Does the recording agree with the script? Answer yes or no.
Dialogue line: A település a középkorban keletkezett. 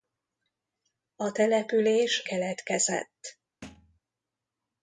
no